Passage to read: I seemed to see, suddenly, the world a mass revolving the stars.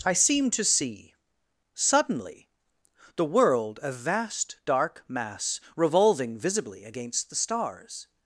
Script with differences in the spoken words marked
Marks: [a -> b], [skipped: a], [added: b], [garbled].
I seemed to see, suddenly, the world a [added: vast dark] mass revolving [added: visibly against] the stars.